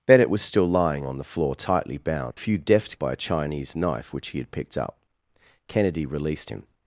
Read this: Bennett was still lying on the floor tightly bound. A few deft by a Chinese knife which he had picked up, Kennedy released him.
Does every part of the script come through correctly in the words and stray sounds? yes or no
yes